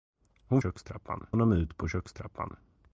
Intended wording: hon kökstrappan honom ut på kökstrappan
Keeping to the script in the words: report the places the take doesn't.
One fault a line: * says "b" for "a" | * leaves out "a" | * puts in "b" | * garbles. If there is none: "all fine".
all fine